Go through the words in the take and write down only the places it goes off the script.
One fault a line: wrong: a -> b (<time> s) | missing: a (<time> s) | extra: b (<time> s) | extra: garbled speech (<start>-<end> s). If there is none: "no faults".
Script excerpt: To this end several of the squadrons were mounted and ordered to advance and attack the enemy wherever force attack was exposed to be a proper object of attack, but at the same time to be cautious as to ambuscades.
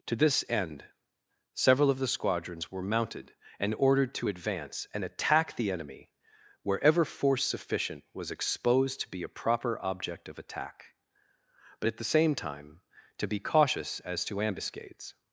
wrong: attack -> sufficient (7.4 s)